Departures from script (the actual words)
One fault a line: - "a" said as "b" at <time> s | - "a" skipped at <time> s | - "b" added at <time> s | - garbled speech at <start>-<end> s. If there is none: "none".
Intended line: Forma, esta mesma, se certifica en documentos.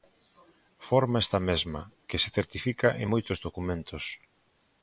- "que" added at 2.1 s
- "moitos" added at 3.1 s